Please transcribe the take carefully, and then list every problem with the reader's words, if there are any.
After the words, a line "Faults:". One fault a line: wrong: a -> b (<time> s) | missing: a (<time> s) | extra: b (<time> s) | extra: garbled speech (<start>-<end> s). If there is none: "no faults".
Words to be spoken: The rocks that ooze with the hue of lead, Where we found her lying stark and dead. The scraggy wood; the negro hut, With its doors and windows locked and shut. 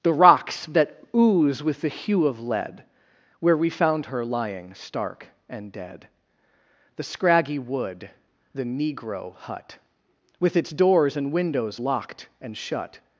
The rocks that ooze with the hue of lead, Where we found her lying stark and dead. The scraggy wood; the negro hut, With its doors and windows locked and shut.
Faults:
no faults